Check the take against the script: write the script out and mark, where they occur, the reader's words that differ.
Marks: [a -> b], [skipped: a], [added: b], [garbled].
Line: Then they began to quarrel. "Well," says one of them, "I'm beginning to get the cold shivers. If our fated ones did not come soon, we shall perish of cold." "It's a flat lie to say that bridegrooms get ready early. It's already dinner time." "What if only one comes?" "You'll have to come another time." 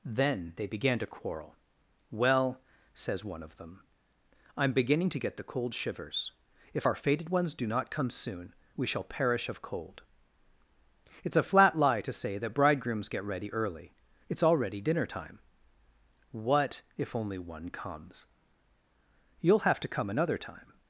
Then they began to quarrel. "Well," says one of them, "I'm beginning to get the cold shivers. If our fated ones [did -> do] not come soon, we shall perish of cold." "It's a flat lie to say that bridegrooms get ready early. It's already dinner time." "What if only one comes?" "You'll have to come another time."